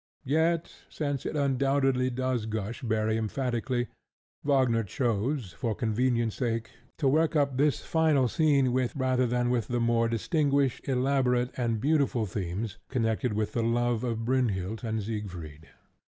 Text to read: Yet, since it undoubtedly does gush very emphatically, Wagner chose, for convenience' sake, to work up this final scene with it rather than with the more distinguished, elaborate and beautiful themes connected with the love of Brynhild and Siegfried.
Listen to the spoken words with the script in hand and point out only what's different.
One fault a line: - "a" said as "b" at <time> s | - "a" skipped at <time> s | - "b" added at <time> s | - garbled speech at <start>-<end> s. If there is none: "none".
- "it" skipped at 8.9 s